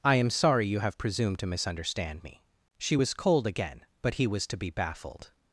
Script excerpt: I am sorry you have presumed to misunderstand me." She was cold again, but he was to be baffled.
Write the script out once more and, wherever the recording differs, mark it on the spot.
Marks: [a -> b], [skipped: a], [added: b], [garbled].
I am sorry you have presumed to misunderstand me." She was cold again, but he was to be baffled.